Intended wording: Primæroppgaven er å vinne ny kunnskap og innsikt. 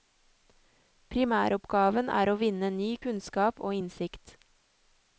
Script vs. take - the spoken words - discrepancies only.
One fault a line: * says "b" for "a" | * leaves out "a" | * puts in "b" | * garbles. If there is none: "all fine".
all fine